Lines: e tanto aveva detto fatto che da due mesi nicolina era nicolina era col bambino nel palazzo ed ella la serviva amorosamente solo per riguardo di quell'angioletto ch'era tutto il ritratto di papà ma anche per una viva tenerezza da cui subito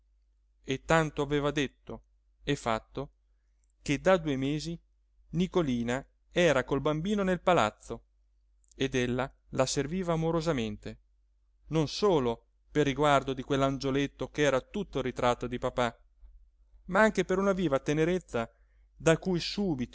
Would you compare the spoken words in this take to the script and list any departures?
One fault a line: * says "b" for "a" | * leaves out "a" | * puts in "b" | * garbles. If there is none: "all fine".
* puts in "e"
* leaves out "nicolina era"
* puts in "non"